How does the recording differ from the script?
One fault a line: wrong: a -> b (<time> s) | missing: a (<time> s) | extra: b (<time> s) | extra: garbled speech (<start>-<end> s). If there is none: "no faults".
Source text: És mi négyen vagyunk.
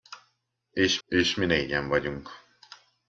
extra: és (1.1 s)